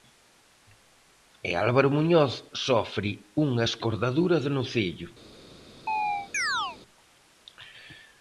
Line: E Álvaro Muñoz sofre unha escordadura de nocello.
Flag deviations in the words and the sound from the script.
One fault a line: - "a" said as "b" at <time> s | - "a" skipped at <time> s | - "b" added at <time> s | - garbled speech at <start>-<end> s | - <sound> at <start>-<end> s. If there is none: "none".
- chirp at 5.9-6.8 s